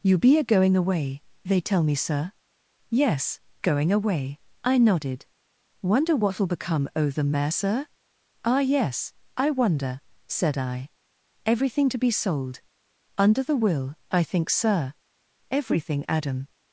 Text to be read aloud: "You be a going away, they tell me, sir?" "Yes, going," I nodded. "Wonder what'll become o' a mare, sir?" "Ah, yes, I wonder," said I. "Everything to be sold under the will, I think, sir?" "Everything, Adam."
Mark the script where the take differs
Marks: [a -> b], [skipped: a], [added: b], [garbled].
"You be a going away, they tell me, sir?" "Yes, going," [added: away] I nodded. "Wonder what'll become o' [a -> the] mare, sir?" "Ah, yes, I wonder," said I. "Everything to be sold under the will, I think, sir?" "Everything, Adam."